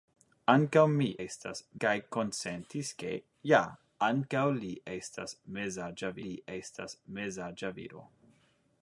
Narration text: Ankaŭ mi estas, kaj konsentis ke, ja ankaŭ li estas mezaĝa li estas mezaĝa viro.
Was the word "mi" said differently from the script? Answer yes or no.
no